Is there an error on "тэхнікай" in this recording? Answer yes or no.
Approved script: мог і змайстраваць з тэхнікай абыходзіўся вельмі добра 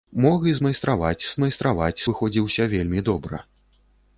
yes